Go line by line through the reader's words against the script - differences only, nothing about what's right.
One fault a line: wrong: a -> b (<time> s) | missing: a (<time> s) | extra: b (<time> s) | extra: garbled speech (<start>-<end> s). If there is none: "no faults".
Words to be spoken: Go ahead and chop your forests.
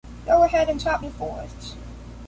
no faults